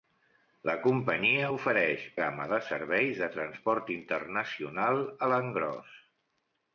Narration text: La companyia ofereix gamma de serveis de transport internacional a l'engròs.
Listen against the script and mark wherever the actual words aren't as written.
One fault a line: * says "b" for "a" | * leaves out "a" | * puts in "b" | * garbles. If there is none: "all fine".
all fine